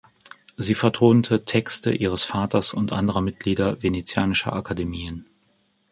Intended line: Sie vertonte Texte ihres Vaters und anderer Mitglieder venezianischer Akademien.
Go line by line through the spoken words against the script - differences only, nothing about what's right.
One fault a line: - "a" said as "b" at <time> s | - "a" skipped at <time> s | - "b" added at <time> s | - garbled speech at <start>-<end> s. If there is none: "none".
none